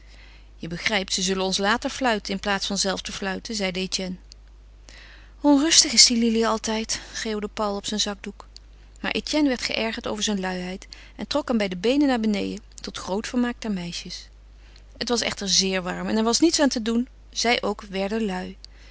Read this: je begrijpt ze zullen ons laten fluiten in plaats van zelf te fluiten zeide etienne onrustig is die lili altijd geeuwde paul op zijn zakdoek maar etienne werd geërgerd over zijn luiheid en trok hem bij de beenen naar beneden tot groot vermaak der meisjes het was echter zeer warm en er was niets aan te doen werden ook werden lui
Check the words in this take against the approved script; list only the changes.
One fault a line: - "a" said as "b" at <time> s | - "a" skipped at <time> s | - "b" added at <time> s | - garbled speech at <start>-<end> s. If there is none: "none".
- "werden" said as "zij" at 17.3 s